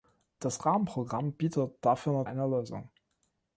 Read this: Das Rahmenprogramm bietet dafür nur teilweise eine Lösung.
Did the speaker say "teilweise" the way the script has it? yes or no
no